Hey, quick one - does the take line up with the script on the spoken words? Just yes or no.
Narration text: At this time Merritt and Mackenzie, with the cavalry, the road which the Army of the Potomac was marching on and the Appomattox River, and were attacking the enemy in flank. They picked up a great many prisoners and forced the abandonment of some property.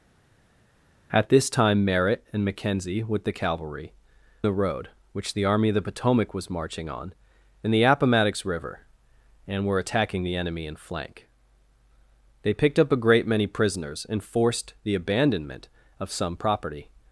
yes